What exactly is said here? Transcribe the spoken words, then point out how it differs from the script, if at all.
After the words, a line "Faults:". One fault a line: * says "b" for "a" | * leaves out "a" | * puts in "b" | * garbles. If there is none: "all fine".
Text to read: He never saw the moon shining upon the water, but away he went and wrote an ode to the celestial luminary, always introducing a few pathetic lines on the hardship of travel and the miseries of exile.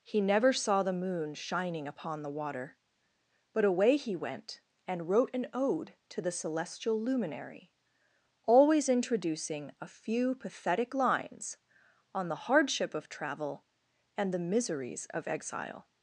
He never saw the moon shining upon the water, but away he went and wrote an ode to the celestial luminary, always introducing a few pathetic lines on the hardship of travel and the miseries of exile.
Faults:
all fine